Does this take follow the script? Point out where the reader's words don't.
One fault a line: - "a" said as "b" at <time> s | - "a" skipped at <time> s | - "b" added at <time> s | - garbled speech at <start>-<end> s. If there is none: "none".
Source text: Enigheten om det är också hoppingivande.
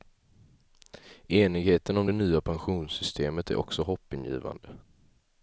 - "nya pensionssystemet" added at 2.1 s